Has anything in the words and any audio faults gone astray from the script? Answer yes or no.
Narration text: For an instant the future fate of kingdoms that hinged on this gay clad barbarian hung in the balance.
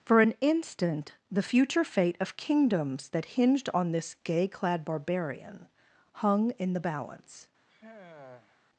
yes